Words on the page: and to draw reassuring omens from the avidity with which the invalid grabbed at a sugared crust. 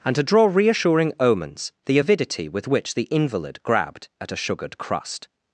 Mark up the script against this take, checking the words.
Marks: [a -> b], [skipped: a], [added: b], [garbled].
and to draw reassuring omens [skipped: from] the avidity with which the invalid grabbed at a sugared crust.